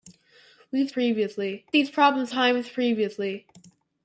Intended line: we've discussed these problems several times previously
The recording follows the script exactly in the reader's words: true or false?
false